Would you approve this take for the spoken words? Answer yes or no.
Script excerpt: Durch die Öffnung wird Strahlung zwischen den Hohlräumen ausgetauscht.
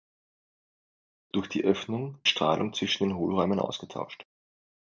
no